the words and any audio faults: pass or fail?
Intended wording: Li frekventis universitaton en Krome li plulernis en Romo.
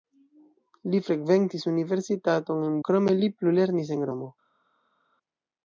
pass